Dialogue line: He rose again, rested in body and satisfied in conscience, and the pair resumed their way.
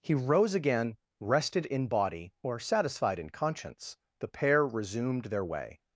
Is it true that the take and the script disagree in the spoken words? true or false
true